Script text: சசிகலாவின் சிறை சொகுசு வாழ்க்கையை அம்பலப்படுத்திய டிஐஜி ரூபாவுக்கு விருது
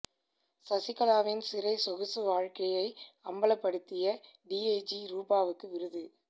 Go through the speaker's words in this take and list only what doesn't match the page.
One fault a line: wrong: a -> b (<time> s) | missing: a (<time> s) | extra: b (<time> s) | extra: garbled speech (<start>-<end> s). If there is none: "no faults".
no faults